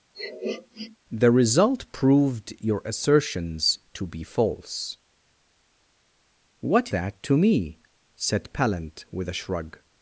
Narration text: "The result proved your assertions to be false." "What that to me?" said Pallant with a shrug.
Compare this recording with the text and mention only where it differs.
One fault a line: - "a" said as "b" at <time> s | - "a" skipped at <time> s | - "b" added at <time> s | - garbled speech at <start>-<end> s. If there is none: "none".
none